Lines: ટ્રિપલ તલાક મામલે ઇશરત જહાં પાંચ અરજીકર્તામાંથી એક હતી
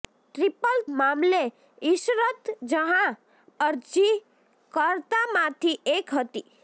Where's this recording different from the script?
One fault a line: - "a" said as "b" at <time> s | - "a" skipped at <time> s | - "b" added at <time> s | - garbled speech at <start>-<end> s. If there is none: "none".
- "તલાક" skipped at 0.8 s
- "પાંચ" skipped at 3.2 s